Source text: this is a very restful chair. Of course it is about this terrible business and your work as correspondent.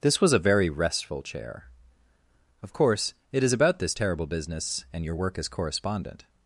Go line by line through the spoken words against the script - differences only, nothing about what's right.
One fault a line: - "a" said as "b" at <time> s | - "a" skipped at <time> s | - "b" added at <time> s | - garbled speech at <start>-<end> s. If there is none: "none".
- "is" said as "was" at 0.2 s